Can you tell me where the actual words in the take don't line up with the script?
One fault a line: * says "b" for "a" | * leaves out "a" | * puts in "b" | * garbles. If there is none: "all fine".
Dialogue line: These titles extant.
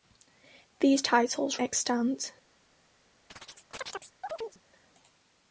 all fine